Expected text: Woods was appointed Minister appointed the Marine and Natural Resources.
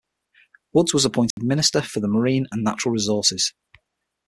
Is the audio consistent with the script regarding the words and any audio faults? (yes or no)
no